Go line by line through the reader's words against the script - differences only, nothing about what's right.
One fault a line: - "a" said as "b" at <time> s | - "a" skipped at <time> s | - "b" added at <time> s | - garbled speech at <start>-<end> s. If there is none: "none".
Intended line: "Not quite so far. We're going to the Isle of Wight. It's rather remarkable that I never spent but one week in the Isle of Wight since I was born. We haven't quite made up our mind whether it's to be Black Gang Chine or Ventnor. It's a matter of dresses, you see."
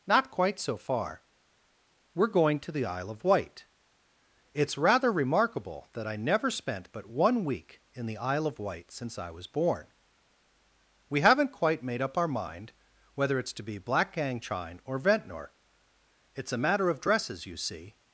none